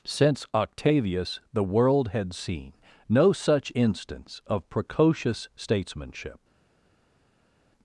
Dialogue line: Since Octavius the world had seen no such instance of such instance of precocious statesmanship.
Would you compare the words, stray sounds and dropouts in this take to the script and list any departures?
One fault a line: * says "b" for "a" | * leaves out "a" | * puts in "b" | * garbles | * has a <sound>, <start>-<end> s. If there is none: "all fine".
* leaves out "such instance of"